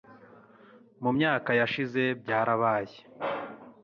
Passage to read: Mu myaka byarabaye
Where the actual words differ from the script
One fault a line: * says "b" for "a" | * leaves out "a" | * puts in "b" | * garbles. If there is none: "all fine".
* puts in "yashize"